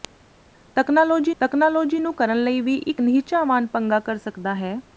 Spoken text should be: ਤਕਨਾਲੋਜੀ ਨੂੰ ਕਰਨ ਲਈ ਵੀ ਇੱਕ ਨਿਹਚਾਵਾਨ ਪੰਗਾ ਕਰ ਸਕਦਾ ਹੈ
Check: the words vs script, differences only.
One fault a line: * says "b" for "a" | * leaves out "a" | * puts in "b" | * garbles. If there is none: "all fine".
* puts in "ਤਕਨਾਲੋਜੀ"